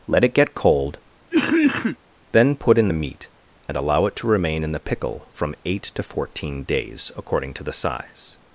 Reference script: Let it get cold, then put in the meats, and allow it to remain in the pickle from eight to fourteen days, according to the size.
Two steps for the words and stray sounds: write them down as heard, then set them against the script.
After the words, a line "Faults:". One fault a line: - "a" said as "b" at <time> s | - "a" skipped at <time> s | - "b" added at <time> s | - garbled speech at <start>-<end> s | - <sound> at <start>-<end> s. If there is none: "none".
Let it get cold, then put in the meat, and allow it to remain in the pickle from eight to fourteen days, according to the size.
Faults:
- cough at 1.3-2.0 s
- "meats" said as "meat" at 2.9 s